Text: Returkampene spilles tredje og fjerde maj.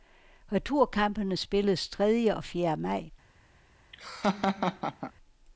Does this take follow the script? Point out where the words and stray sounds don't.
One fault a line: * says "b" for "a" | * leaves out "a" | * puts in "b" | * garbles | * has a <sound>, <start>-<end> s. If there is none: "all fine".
* has a laugh, 3.9-5.1 s